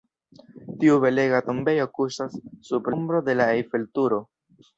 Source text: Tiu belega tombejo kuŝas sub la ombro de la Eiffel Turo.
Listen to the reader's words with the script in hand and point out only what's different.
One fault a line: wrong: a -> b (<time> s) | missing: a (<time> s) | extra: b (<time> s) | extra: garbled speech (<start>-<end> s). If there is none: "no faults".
missing: la (2.9 s)